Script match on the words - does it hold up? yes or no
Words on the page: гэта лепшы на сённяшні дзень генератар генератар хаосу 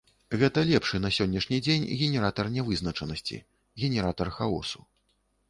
no